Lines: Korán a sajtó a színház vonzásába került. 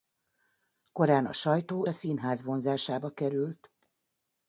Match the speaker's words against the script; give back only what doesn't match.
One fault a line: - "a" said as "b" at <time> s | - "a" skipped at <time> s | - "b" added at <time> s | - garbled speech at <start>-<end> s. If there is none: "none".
none